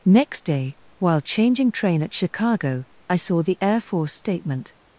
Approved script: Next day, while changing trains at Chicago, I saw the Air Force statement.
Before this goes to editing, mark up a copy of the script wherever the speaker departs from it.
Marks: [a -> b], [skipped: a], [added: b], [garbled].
Next day, while changing [trains -> train] at Chicago, I saw the Air Force statement.